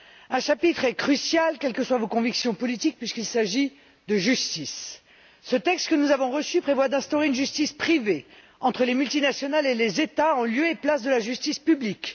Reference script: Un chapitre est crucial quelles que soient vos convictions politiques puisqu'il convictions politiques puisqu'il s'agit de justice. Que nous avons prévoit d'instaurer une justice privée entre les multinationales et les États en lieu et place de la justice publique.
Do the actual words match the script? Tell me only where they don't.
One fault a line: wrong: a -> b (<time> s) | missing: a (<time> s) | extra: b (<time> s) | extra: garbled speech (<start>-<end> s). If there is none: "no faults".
missing: convictions politiques puisqu'il (3.2 s)
extra: Ce texte (5.4 s)
extra: reçu (6.3 s)